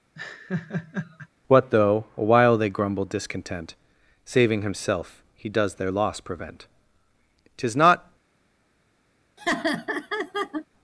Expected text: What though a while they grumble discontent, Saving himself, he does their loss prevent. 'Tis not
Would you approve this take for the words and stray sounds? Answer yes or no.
no